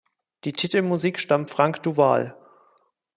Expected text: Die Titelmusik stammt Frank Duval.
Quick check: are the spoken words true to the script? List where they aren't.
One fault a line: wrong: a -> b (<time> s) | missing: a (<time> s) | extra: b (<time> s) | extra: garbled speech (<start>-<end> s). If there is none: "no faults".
no faults